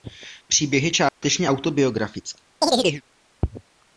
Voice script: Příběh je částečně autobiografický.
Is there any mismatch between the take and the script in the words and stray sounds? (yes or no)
yes